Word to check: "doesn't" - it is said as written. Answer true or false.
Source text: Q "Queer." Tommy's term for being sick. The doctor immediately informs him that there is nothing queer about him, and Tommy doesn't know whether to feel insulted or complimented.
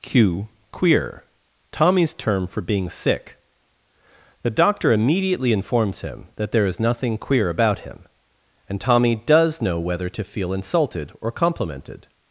false